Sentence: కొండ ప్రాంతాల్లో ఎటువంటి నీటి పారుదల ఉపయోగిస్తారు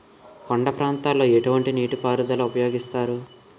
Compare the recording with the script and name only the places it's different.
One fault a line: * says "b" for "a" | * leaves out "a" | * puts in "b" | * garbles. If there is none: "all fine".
all fine